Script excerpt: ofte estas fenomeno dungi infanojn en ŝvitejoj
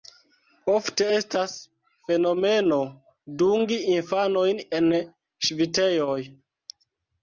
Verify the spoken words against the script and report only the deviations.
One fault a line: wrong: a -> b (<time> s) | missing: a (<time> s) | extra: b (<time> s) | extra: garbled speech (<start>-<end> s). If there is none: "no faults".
no faults